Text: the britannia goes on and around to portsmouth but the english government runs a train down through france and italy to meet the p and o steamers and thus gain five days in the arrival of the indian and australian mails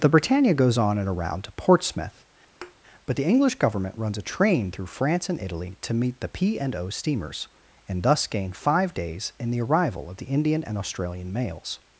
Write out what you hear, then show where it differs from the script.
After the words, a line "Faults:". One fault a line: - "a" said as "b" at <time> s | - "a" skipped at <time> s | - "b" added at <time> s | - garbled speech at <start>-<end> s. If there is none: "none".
the britannia goes on and around to portsmouth but the english government runs a train through france and italy to meet the p and o steamers and thus gain five days in the arrival of the indian and australian mails
Faults:
- "down" skipped at 4.7 s